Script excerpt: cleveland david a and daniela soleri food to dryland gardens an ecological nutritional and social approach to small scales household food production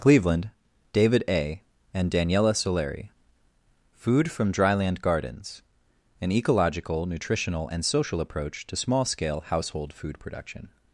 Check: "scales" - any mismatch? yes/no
yes